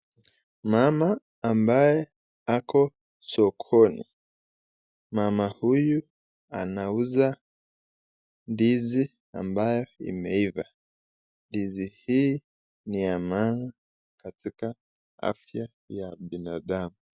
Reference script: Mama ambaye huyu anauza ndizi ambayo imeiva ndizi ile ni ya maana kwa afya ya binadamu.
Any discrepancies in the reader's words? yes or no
yes